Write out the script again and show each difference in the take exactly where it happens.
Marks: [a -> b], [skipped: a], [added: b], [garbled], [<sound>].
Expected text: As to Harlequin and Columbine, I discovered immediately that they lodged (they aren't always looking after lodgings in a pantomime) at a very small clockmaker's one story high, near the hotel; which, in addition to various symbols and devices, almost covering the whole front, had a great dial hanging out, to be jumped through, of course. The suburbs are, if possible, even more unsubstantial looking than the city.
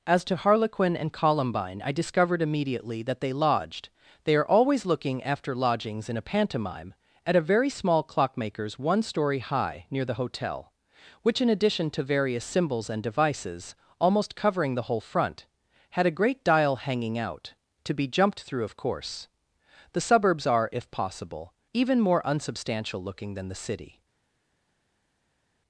As to Harlequin and Columbine, I discovered immediately that they lodged (they [aren't -> are] always looking after lodgings in a pantomime) at a very small clockmaker's one story high, near the hotel; which, in addition to various symbols and devices, almost covering the whole front, had a great dial hanging out, to be jumped through, of course. The suburbs are, if possible, even more unsubstantial looking than the city.